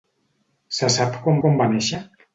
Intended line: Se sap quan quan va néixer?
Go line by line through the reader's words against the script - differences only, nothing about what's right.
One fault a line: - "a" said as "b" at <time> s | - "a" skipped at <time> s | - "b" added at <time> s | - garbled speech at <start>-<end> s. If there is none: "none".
none